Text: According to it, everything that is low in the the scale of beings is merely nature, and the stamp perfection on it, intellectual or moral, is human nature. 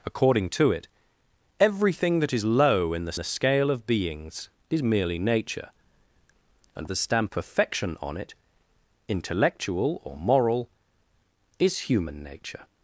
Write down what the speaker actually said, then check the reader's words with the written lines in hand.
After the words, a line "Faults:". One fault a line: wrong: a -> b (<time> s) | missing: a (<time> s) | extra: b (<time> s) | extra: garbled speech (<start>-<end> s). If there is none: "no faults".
According to it, everything that is low in the the scale of beings is merely nature, and the stamp perfection on it, intellectual or moral, is human nature.
Faults:
no faults